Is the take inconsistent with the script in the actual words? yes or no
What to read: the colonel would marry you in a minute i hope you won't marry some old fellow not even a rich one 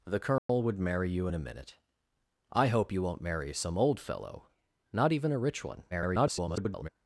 yes